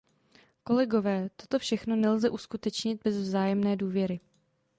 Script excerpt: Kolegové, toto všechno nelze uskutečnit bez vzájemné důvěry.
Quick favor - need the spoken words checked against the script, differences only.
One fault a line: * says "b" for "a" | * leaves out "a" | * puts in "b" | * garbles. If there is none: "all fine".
all fine